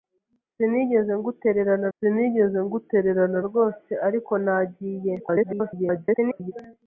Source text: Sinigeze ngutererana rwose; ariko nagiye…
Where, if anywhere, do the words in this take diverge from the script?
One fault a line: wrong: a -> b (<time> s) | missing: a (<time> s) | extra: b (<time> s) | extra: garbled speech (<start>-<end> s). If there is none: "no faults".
extra: sinigeze ngutererana (2.0 s)
extra: garbled speech (5.2-6.5 s)